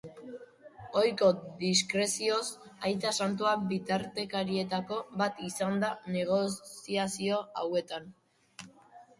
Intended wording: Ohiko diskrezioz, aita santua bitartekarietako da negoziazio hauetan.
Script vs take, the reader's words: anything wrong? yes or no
yes